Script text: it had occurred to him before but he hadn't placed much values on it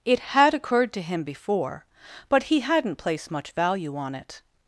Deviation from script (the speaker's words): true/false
true